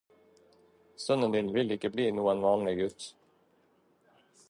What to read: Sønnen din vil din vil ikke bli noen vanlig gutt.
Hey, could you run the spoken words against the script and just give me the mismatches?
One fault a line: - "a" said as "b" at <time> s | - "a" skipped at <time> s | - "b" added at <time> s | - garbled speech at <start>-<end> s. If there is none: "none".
- "din vil" skipped at 1.8 s